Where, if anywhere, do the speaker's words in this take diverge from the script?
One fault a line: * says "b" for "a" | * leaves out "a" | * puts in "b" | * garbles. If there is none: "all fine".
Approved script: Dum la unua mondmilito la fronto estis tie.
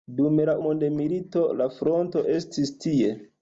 * leaves out "unua"